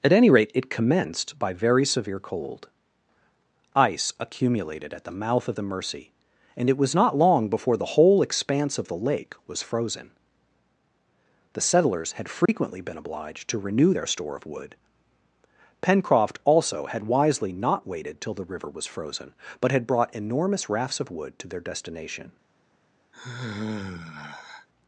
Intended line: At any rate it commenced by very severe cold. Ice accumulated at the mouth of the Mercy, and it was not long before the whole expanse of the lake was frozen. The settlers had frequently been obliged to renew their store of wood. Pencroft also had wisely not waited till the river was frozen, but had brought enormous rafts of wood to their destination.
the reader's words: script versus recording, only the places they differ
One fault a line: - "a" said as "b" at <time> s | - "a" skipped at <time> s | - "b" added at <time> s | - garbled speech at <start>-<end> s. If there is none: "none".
none